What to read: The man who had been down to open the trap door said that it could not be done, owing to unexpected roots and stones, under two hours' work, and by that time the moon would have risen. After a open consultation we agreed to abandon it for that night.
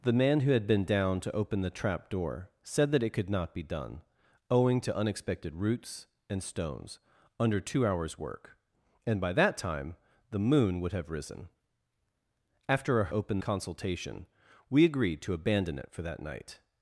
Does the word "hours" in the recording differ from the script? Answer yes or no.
no